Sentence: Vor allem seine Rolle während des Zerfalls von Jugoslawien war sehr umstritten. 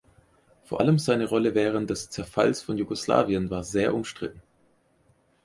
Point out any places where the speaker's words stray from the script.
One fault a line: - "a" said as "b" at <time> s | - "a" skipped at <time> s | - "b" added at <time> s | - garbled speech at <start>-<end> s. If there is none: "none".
none